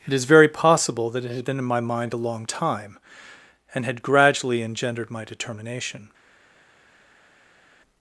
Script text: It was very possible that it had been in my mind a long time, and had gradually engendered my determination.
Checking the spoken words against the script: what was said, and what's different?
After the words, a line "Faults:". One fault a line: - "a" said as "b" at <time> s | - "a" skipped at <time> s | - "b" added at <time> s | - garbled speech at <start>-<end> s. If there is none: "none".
It is very possible that it had been in my mind a long time, and had gradually engendered my determination.
Faults:
- "was" said as "is" at 0.1 s